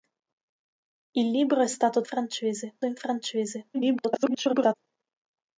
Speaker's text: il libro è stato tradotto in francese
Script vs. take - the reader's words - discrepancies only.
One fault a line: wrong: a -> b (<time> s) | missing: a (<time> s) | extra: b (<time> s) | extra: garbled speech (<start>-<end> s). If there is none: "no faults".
wrong: tradotto -> francese (2.0 s)
extra: garbled speech (3.7-4.7 s)